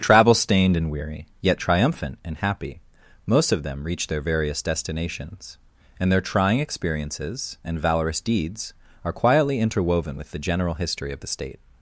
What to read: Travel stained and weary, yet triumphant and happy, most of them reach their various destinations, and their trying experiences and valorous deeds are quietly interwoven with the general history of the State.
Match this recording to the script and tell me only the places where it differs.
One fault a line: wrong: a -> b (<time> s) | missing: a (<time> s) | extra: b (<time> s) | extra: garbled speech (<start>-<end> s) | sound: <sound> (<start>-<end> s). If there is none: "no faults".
no faults